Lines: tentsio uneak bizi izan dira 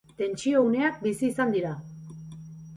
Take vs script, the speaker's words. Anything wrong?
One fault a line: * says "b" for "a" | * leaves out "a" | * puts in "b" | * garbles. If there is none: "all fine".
all fine